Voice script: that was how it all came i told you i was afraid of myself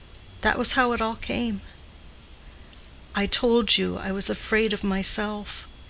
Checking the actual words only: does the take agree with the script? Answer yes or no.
yes